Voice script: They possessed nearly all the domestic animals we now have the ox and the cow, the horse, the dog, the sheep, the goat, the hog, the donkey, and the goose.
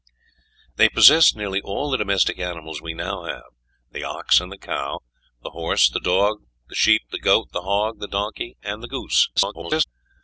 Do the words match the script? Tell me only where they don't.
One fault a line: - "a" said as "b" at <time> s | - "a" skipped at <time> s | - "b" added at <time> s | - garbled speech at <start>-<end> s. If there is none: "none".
- garbled speech at 9.4-9.8 s